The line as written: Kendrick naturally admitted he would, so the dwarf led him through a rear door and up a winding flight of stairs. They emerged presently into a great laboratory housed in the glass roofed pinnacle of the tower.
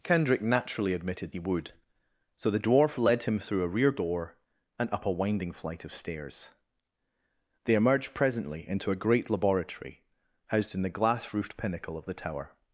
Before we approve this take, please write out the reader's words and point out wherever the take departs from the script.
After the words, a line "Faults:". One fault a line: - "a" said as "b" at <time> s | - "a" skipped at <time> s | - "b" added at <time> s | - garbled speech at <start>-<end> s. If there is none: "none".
Kendrick naturally admitted he would, so the dwarf led him through a rear door and up a winding flight of stairs. They emerged presently into a great laboratory housed in the glass roofed pinnacle of the tower.
Faults:
none